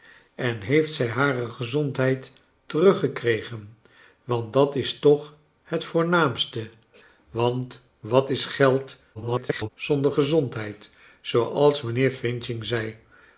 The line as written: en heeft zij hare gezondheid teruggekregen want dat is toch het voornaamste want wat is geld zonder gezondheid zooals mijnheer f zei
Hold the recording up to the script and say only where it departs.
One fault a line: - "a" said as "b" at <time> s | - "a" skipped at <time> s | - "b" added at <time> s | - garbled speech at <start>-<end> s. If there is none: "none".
- garbled speech at 9.1-9.7 s